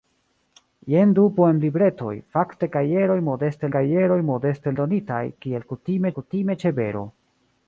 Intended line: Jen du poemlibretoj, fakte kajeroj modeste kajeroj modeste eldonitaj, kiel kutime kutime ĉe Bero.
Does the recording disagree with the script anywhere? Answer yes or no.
no